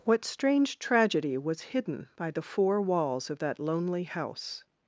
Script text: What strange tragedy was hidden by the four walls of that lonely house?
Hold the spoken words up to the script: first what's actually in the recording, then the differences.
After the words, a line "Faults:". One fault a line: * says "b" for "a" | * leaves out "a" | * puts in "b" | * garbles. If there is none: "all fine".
What strange tragedy was hidden by the four walls of that lonely house?
Faults:
all fine